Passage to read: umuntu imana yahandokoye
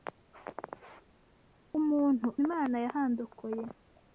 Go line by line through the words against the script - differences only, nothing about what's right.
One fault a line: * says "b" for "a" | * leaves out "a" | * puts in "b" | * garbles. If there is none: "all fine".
all fine